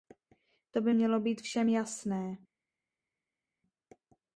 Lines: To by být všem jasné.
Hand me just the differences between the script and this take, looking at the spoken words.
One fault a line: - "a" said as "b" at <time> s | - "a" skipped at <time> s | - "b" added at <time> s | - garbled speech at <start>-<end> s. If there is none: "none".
- "mělo" added at 0.9 s